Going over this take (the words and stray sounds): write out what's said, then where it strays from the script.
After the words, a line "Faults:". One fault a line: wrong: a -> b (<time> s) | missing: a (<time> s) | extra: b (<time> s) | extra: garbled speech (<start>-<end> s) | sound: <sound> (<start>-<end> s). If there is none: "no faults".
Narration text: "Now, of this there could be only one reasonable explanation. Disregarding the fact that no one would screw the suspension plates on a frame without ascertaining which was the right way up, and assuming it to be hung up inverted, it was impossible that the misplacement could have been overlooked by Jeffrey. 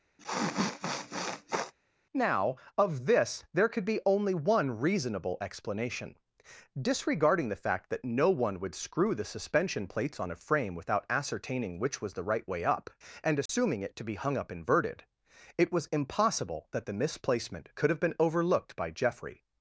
"Now, of this there could be only one reasonable explanation. Disregarding the fact that no one would screw the suspension plates on a frame without ascertaining which was the right way up, and assuming it to be hung up inverted, it was impossible that the misplacement could have been overlooked by Jeffrey.
Faults:
sound: sniff (0.2-1.7 s)
sound: dropout (13.5-13.5 s)